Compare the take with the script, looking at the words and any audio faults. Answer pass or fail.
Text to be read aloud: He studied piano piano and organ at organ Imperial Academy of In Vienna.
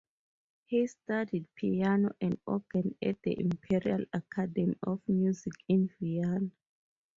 fail